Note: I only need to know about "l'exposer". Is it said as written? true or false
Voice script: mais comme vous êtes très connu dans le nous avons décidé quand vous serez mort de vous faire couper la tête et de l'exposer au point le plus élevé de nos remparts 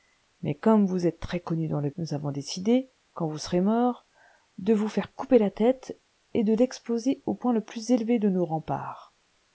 true